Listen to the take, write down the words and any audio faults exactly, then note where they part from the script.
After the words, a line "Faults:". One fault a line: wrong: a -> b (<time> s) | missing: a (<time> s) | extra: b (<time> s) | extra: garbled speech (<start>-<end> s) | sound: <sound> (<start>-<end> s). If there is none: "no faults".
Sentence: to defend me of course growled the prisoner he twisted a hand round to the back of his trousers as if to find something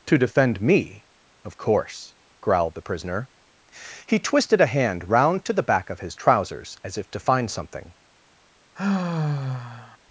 to defend me of course growled the prisoner he twisted a hand round to the back of his trousers as if to find something
Faults:
sound: sigh (8.8-10.0 s)